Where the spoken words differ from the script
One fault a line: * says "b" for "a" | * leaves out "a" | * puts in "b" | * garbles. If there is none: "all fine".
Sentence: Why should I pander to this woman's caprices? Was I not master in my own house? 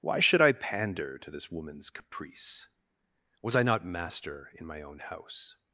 * says "caprice" for "caprices"